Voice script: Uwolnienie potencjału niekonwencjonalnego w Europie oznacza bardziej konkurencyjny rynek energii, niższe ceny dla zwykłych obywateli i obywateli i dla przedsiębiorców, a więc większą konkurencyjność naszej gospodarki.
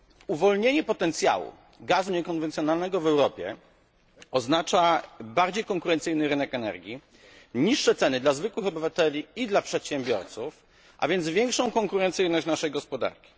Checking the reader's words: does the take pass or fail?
fail